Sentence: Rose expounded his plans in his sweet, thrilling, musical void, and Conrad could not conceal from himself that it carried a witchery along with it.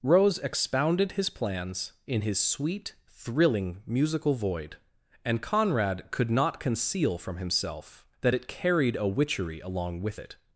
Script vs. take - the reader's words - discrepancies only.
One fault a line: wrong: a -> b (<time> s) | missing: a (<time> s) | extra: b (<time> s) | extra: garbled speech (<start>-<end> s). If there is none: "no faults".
no faults